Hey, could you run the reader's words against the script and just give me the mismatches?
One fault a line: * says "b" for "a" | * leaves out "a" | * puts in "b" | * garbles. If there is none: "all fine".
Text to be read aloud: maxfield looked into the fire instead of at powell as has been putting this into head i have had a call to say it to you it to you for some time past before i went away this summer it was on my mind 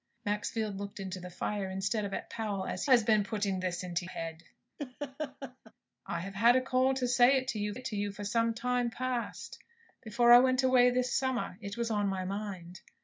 all fine